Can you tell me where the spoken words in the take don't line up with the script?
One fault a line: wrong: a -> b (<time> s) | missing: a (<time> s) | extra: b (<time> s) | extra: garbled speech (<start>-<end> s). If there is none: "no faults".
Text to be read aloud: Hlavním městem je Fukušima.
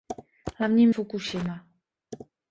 missing: městem je (0.9 s)